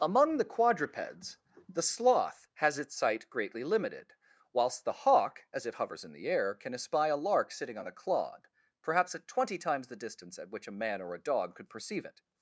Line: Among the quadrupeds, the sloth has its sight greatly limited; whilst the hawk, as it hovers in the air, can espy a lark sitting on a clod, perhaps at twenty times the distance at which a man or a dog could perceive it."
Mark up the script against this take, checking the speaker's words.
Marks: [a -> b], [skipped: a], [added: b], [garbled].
Among the quadrupeds, the sloth has its sight greatly limited; whilst the hawk, as it hovers in the air, can espy a lark sitting on a clod, perhaps at twenty times the distance at which a man or a dog could perceive it."